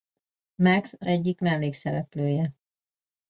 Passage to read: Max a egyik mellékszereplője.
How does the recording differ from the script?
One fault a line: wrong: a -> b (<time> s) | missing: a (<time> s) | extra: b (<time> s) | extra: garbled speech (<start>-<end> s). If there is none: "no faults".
no faults